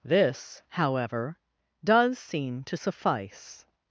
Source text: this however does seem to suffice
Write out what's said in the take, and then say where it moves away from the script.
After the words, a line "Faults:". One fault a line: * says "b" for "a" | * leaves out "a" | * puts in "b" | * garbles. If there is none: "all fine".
this however does seem to suffice
Faults:
all fine